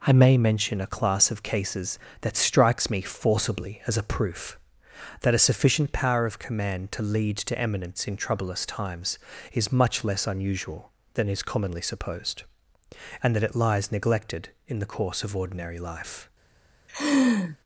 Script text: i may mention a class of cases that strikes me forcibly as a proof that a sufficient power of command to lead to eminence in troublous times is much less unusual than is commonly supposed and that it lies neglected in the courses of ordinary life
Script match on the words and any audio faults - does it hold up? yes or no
no